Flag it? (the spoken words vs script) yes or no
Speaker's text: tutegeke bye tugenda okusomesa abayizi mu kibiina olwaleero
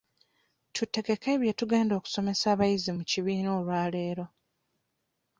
no